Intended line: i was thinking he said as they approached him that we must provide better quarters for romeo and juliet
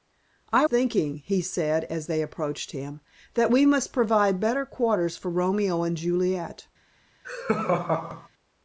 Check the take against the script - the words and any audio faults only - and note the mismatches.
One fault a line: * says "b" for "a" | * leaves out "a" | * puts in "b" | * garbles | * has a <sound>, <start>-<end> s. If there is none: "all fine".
* leaves out "was"
* has a laugh, 7.2-8.3 s